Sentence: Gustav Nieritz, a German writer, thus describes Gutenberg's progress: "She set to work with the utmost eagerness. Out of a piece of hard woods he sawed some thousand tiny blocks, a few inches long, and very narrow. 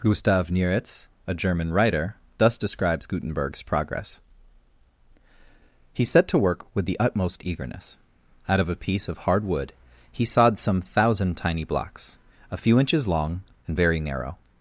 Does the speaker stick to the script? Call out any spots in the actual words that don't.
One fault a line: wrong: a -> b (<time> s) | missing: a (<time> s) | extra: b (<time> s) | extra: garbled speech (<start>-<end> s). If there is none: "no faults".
wrong: She -> He (5.9 s)
wrong: woods -> wood (9.4 s)